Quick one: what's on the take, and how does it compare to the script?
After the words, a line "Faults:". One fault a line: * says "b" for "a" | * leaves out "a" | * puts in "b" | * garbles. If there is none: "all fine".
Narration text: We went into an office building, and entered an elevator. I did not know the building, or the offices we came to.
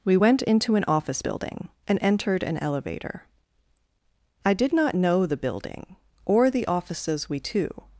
We went into an office building, and entered an elevator. I did not know the building, or the offices we to.
Faults:
* leaves out "came"